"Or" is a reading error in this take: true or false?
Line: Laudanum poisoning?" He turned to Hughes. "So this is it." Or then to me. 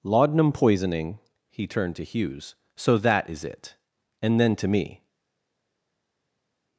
true